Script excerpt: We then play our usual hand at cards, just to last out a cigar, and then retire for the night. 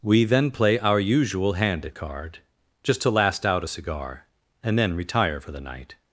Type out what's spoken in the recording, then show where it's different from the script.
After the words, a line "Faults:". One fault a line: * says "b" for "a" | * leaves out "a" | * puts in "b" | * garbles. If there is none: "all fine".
We then play our usual hand at card, just to last out a cigar, and then retire for the night.
Faults:
* says "card" for "cards"